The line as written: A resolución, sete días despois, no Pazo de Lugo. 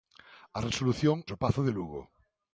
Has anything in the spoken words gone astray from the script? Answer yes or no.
yes